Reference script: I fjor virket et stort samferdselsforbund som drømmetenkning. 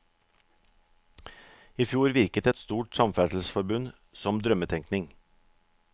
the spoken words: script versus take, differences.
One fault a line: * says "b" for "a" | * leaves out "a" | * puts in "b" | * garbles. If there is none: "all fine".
all fine